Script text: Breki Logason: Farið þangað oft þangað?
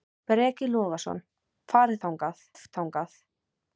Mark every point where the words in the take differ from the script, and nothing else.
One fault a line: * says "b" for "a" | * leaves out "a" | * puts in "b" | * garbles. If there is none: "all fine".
all fine